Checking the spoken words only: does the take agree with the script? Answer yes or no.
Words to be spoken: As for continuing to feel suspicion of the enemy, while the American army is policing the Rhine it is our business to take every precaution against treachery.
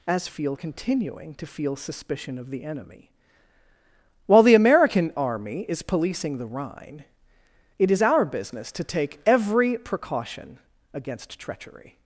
no